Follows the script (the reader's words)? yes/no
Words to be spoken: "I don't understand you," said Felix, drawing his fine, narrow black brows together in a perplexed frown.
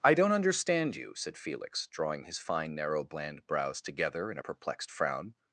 no